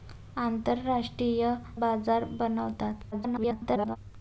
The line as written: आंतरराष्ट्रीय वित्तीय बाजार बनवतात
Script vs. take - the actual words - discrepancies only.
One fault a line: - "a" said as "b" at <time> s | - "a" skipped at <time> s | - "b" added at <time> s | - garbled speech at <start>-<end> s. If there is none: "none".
- "वित्तीय" skipped at 1.5 s
- garbled speech at 3.1-4.0 s